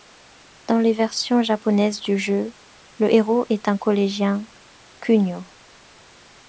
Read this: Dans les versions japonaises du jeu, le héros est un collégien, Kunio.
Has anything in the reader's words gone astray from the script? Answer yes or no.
no